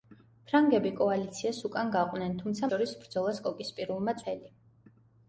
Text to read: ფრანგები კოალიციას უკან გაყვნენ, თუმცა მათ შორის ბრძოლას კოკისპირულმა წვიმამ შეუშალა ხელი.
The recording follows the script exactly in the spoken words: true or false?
false